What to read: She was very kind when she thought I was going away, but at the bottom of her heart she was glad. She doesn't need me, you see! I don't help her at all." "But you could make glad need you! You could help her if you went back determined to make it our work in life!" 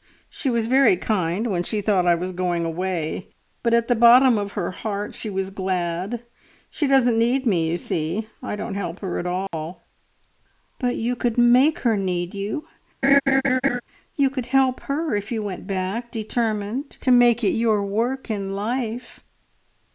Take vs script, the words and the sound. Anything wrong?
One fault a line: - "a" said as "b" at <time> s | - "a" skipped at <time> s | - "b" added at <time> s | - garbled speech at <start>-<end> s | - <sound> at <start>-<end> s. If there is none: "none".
- dropout at 9.5-9.5 s
- "glad" said as "her" at 11.8 s
- laugh at 13.0-13.8 s
- "our" said as "your" at 17.6 s